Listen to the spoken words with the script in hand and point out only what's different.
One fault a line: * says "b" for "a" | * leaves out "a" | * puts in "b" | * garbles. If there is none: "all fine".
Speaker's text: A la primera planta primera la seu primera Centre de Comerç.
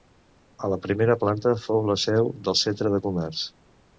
* says "fou" for "primera"
* says "del" for "primera"